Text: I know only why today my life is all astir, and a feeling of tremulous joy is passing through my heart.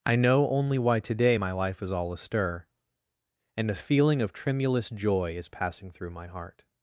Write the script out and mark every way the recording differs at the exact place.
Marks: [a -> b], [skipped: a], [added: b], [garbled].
I know only why today my life is all astir, and a feeling of tremulous joy is passing through my heart.